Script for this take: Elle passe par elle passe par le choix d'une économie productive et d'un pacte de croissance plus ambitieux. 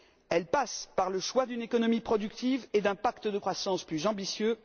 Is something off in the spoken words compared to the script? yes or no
yes